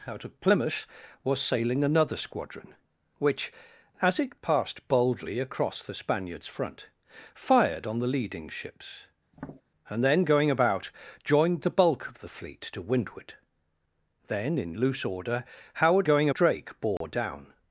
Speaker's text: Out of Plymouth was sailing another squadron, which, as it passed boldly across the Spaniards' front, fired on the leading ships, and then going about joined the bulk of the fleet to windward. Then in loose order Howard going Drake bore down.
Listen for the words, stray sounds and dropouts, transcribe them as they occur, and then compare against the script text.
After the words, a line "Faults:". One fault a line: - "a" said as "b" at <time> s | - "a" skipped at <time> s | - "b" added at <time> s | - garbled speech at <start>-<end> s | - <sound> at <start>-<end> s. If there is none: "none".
Out of Plymouth was sailing another squadron, which, as it passed boldly across the Spaniards' front, fired on the leading ships, and then going about joined the bulk of the fleet to windward. Then in loose order Howard going Drake bore down.
Faults:
- tap at 9.3-9.6 s
- dropout at 17.0-17.0 s